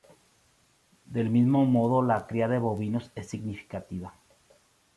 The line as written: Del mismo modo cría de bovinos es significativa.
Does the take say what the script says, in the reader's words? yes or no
no